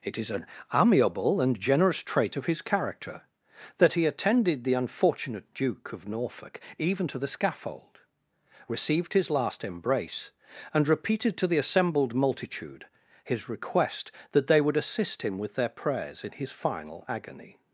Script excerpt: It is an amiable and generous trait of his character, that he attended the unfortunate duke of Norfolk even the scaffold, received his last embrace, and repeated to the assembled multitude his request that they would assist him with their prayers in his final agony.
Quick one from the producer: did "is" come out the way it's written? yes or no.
yes